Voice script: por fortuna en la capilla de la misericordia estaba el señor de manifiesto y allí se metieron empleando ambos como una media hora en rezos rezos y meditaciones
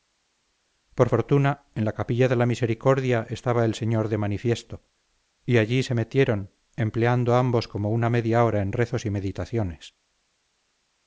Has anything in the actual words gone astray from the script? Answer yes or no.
yes